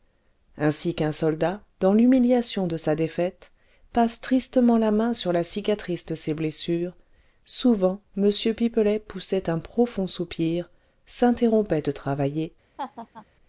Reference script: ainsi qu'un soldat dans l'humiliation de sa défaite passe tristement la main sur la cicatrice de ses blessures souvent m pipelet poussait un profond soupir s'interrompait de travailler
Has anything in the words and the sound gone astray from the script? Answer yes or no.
yes